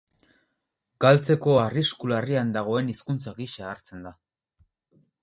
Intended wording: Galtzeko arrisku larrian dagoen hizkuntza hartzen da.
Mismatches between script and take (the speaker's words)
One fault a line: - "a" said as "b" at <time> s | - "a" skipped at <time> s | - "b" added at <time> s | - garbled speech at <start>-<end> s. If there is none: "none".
- "gisa" added at 3.4 s